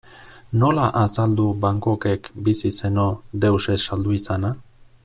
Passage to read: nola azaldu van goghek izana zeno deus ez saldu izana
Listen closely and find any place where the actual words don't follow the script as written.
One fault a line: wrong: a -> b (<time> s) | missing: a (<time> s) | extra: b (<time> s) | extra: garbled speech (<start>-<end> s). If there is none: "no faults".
wrong: izana -> bizi (2.5 s)